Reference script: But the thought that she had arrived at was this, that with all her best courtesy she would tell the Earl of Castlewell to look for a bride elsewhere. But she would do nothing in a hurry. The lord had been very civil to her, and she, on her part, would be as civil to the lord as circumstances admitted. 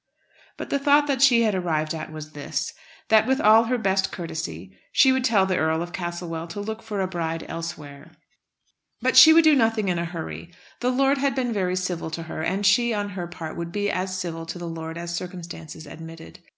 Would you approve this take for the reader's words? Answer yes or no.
yes